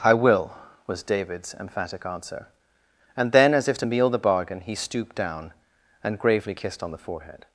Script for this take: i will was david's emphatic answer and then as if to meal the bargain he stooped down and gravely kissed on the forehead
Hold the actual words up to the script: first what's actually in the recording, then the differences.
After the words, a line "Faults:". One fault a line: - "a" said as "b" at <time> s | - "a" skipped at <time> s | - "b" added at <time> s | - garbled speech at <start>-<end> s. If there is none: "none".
i will was david's emphatic answer and then as if to meal the bargain he stooped down and gravely kissed on the forehead
Faults:
none